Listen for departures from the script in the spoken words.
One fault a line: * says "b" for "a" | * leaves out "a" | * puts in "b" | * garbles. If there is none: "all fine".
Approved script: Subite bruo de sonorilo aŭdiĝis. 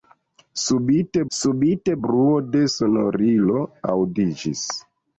* puts in "subite"